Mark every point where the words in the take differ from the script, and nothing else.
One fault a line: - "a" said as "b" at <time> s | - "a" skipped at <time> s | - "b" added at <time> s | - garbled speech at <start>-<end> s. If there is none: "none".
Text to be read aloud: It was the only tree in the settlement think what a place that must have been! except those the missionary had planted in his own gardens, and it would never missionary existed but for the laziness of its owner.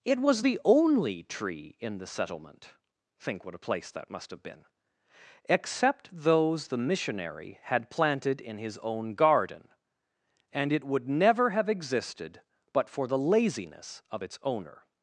- "gardens" said as "garden" at 9.1 s
- "missionary" said as "have" at 11.5 s